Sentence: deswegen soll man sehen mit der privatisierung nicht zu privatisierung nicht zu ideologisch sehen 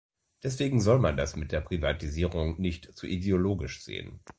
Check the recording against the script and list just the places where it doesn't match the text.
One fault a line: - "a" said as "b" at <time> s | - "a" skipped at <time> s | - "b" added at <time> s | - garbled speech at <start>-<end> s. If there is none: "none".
- "sehen" said as "das" at 1.2 s
- "privatisierung nicht zu" skipped at 3.1 s